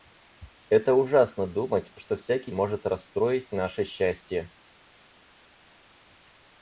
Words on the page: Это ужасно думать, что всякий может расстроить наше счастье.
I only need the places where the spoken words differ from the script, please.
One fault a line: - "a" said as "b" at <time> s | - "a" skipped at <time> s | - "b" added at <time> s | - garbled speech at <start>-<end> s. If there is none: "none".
none